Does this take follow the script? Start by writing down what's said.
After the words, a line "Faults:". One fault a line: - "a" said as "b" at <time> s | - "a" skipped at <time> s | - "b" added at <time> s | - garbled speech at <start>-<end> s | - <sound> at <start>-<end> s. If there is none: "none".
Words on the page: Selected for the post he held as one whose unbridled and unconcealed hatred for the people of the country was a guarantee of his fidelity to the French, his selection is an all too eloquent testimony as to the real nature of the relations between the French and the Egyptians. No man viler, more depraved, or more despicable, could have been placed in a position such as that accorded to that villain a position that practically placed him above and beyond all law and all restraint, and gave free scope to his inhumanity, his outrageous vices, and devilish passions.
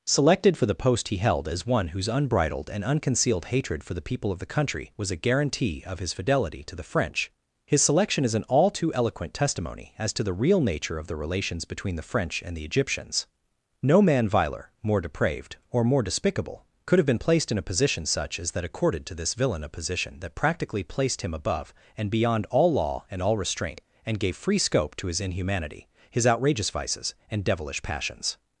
Selected for the post he held as one whose unbridled and unconcealed hatred for the people of the country was a guarantee of his fidelity to the French, his selection is an all too eloquent testimony as to the real nature of the relations between the French and the Egyptians. No man viler, more depraved, or more despicable, could have been placed in a position such as that accorded to this villain a position that practically placed him above and beyond all law and all restraint, and gave free scope to his inhumanity, his outrageous vices, and devilish passions.
Faults:
- "that" said as "this" at 19.1 s